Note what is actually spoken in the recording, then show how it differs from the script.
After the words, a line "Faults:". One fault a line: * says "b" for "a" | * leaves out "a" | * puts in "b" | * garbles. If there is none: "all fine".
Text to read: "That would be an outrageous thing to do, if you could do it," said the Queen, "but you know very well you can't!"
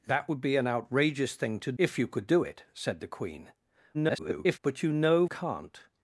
"That would be an outrageous thing to if you could do it," said the Queen, [garbled] "but you know can't!"
Faults:
* leaves out "do"
* garbles
* leaves out "very well you"